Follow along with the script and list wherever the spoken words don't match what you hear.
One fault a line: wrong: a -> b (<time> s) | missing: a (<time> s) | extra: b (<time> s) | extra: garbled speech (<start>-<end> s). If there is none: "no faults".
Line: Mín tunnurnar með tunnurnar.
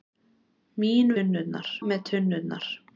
no faults